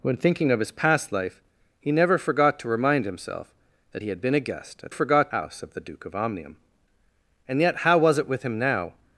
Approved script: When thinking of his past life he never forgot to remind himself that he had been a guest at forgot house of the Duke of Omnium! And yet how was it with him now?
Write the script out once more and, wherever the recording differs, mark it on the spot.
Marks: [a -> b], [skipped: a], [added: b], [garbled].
When thinking of his past life he never forgot to remind himself that he had been a guest at forgot house of the Duke of Omnium! And yet how was it with him now?